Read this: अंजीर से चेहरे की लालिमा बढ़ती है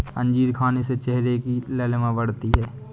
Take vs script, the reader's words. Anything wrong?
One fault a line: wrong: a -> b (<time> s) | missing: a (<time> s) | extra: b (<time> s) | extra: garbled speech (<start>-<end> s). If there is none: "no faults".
extra: खाने (0.5 s)